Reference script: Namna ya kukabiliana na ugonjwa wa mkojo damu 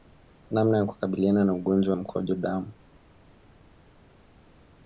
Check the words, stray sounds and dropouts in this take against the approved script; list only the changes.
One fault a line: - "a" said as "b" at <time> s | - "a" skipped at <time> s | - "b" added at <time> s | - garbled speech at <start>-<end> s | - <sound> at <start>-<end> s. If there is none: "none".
none